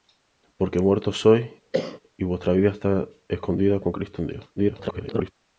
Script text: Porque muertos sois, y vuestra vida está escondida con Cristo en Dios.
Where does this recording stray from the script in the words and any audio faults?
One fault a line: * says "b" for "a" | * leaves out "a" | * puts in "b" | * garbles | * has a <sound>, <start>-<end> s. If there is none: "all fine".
* has a cough, 1.7-2.0 s
* garbles